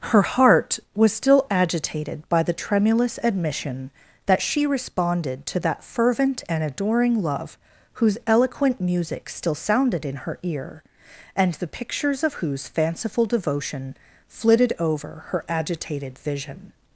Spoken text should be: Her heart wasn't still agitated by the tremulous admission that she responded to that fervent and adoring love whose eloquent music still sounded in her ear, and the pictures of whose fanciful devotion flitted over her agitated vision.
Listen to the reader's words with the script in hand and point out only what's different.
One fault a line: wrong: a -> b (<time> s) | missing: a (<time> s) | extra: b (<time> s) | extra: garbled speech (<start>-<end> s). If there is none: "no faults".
wrong: wasn't -> was (0.9 s)